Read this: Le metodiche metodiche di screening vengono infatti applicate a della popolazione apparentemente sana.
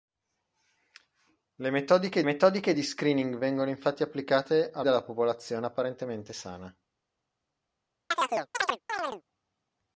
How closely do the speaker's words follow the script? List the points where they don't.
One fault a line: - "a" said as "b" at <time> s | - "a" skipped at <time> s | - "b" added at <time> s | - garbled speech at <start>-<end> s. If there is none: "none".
none